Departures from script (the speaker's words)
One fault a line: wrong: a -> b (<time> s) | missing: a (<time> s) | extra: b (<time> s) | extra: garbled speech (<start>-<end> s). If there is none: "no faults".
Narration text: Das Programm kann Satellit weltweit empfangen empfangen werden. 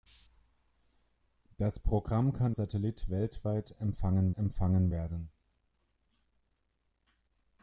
no faults